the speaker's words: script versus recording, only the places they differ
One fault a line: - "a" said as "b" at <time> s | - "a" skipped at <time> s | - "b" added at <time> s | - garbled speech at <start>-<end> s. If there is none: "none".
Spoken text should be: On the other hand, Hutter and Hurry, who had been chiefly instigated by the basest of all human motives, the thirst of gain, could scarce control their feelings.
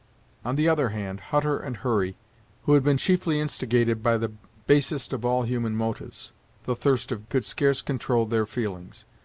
- "gain" skipped at 7.3 s